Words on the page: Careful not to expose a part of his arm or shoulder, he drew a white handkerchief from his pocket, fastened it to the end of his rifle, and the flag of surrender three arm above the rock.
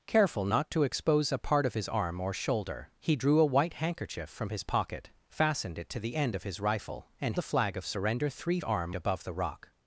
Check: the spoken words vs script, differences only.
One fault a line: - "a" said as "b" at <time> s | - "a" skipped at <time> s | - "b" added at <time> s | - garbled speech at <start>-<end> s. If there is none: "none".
none